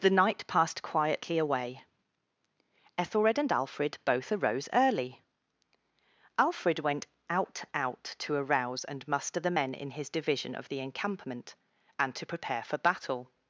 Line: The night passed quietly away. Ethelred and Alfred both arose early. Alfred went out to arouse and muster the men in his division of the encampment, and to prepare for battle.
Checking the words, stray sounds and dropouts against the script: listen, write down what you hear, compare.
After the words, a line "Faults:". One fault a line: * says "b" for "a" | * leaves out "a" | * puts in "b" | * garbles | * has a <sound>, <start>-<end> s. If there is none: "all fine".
The night passed quietly away. Ethelred and Alfred both arose early. Alfred went out out to arouse and muster the men in his division of the encampment, and to prepare for battle.
Faults:
* puts in "out"